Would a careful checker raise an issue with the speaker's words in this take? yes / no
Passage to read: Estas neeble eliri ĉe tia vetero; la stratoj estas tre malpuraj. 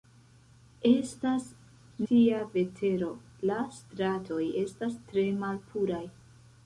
yes